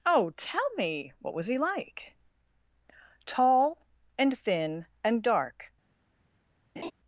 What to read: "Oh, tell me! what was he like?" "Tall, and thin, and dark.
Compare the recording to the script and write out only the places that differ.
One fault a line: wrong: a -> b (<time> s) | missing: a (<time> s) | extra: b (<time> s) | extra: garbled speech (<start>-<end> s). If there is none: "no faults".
no faults